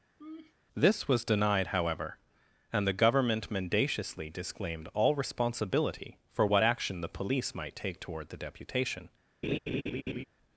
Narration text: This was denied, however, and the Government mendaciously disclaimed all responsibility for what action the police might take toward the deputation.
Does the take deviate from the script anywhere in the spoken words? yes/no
no